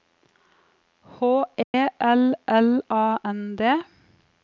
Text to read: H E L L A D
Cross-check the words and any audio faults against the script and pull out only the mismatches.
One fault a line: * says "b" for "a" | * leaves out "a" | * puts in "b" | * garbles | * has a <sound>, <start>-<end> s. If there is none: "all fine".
* has a dropout, 1.6-1.7 s
* puts in "N"